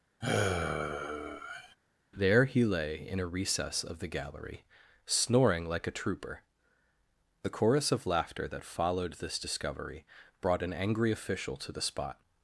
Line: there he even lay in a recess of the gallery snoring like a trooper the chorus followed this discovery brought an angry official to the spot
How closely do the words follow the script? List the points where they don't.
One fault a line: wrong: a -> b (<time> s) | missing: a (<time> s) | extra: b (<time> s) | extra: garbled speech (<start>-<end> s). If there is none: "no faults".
missing: even (2.6 s)
extra: of laughter that (7.9 s)